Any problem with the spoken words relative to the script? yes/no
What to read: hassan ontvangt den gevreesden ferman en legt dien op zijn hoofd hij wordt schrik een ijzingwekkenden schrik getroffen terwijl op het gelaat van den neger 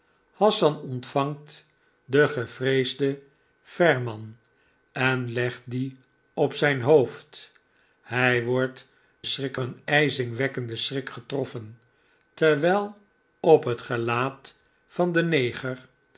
no